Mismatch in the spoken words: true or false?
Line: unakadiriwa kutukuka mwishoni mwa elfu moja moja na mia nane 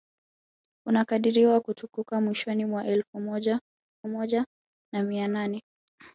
false